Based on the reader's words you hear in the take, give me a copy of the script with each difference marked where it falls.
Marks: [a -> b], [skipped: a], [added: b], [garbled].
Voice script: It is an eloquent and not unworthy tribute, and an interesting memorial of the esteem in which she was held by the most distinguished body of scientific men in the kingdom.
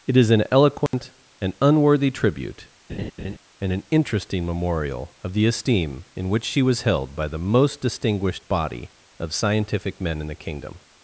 It is an eloquent and [skipped: not] unworthy tribute, and an interesting memorial of the esteem in which she was held by the most distinguished body of scientific men in the kingdom.